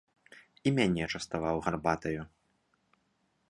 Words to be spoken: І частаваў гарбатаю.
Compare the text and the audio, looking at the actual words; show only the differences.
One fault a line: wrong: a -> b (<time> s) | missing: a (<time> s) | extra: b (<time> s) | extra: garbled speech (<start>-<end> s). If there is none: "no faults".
extra: мяне (0.8 s)